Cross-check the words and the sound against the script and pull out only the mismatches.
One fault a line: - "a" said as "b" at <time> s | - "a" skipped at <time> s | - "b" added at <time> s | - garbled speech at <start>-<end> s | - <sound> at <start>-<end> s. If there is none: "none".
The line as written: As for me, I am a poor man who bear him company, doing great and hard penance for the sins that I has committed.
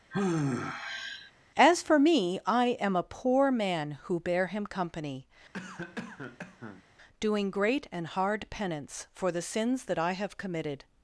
- sigh at 0.1-1.3 s
- cough at 5.5-6.8 s
- "has" said as "have" at 10.1 s